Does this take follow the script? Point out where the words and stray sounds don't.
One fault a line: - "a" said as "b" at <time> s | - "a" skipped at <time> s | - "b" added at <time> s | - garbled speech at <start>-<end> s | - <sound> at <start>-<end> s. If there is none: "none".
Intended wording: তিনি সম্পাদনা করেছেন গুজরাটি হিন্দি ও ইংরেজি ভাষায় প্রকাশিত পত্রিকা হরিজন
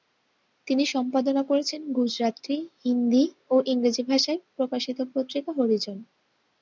none